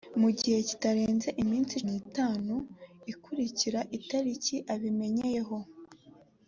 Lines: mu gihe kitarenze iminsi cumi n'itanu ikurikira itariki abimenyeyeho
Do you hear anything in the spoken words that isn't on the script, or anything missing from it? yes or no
yes